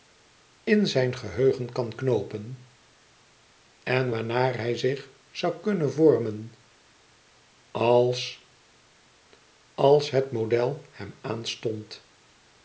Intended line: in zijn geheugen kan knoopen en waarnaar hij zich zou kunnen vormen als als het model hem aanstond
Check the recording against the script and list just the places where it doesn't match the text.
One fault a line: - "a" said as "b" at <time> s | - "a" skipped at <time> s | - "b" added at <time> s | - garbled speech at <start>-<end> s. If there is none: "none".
none